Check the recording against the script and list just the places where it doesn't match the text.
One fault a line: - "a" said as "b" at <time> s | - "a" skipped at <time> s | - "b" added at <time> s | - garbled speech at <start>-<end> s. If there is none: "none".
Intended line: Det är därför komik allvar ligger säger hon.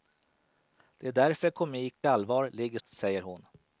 none